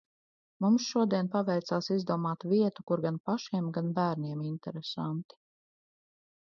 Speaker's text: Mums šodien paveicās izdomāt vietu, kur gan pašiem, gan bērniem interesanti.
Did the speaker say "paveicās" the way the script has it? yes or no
yes